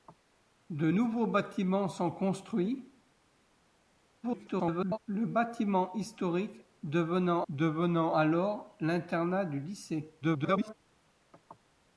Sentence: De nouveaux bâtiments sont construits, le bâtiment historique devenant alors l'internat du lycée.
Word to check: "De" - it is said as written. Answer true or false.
true